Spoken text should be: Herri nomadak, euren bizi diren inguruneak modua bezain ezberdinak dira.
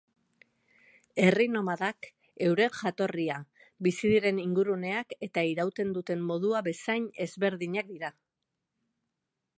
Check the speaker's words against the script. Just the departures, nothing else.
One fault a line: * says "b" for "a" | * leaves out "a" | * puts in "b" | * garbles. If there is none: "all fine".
* puts in "jatorria"
* puts in "eta irauten duten"